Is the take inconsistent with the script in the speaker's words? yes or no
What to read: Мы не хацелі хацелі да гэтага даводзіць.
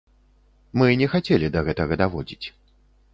yes